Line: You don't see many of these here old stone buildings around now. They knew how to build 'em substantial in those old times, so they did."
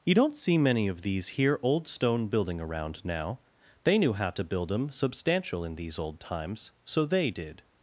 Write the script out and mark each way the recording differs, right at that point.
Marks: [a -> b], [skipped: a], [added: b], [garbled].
You don't see many of these here old stone [buildings -> building] around now. They knew how to build 'em substantial in [those -> these] old times, so they did."